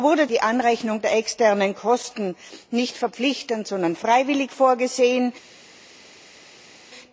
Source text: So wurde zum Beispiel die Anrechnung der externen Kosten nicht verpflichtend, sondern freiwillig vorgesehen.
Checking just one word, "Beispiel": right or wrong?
wrong